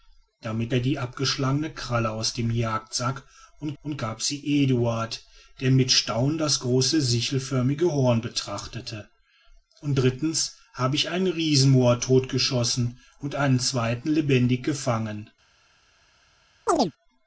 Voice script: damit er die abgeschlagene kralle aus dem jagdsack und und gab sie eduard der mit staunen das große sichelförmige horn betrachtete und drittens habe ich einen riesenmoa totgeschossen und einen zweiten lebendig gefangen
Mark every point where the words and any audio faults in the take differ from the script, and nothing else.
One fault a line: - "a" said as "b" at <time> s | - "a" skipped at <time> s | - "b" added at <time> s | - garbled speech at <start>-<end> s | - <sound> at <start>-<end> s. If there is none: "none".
- chirp at 16.7-16.9 s